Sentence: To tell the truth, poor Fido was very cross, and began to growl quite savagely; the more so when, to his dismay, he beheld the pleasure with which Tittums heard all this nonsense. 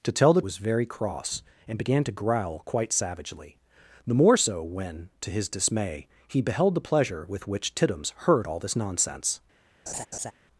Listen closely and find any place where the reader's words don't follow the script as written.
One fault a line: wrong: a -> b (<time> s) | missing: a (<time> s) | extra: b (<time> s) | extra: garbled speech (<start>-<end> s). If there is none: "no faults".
missing: truth poor Fido (0.4 s)